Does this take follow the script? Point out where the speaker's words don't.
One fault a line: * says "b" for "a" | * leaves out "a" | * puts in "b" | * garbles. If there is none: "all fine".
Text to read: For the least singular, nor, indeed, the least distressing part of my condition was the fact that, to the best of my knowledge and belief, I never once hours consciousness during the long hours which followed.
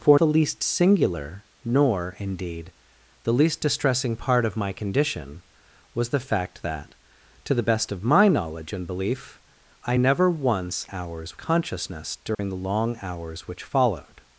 all fine